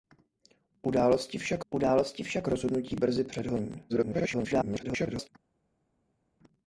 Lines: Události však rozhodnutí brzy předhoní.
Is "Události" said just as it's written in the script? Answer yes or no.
yes